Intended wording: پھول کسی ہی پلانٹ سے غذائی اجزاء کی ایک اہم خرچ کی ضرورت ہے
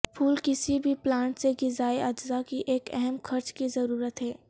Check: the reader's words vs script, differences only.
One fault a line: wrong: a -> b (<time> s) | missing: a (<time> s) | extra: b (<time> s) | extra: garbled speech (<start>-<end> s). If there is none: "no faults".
wrong: ہی -> بھی (0.8 s)